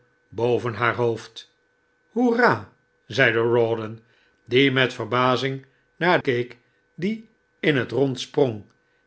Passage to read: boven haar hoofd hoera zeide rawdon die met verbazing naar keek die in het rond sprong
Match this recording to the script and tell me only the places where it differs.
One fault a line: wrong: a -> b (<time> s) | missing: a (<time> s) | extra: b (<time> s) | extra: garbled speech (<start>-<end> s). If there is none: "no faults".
no faults